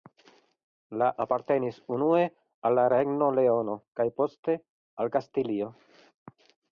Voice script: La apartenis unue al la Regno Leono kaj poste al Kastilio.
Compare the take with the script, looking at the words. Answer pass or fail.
pass